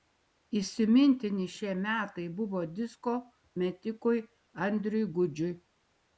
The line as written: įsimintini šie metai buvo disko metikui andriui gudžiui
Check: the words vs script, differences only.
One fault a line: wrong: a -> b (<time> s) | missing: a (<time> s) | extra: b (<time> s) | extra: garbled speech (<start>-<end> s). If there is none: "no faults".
no faults